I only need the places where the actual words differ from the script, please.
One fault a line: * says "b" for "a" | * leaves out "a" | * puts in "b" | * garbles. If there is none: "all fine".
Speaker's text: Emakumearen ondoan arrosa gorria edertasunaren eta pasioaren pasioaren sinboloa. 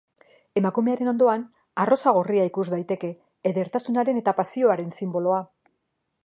* puts in "ikus daiteke"
* leaves out "pasioaren"